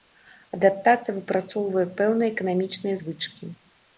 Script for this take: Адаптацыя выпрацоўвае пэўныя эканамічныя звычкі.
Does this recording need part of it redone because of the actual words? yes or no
no